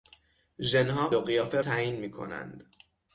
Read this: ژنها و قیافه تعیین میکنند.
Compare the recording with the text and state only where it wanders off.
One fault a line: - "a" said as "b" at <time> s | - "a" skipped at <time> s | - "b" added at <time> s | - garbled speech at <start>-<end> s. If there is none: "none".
none